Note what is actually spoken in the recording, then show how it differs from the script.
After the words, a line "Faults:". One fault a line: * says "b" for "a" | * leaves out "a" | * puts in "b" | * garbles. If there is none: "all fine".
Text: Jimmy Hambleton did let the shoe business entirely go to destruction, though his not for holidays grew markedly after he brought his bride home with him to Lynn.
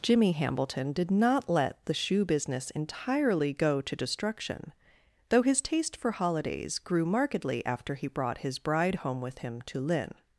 Jimmy Hambleton did not let the shoe business entirely go to destruction, though his taste for holidays grew markedly after he brought his bride home with him to Lynn.
Faults:
* puts in "not"
* says "taste" for "not"